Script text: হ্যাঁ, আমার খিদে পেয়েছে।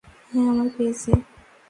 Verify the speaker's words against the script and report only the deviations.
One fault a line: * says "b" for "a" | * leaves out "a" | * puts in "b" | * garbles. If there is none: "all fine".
* leaves out "খিদে"